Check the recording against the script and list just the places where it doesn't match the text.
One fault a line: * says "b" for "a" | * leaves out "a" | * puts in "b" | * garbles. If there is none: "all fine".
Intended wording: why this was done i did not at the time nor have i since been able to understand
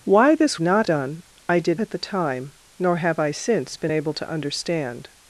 * says "not" for "was"
* leaves out "not"